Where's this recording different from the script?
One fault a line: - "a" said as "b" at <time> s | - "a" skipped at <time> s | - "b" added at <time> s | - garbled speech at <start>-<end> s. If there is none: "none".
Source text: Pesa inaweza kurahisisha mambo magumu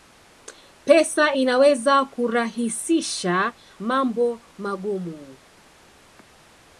none